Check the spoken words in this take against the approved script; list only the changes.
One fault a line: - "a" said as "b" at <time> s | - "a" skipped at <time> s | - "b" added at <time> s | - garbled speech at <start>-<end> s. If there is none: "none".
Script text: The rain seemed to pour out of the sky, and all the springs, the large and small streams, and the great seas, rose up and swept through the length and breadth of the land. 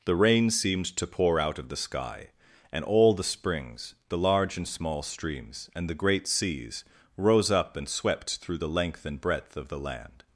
none